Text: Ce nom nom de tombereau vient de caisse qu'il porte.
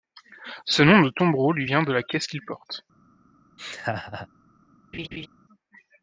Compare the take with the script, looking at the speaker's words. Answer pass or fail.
fail